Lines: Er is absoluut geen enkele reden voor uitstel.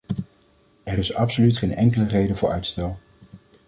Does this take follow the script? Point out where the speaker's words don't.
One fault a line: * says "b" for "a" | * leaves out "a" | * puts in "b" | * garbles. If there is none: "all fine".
all fine